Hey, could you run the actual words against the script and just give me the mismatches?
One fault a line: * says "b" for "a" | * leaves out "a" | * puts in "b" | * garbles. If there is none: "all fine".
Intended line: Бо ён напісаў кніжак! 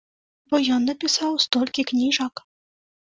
* puts in "столькі"